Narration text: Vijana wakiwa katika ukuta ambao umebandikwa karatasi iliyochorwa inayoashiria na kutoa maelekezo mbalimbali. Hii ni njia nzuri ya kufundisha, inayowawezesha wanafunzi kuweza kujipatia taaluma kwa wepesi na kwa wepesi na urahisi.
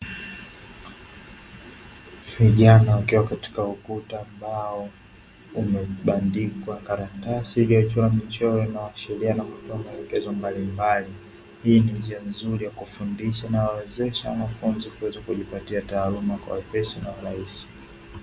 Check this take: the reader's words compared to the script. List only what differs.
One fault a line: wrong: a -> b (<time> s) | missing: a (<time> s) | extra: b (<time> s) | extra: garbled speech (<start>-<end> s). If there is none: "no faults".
extra: michoro (8.1 s)
missing: kwa wepesi na (17.1 s)